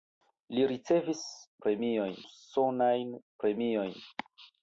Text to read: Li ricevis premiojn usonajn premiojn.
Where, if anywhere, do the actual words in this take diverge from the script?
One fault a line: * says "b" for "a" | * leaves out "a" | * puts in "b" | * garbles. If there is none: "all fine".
all fine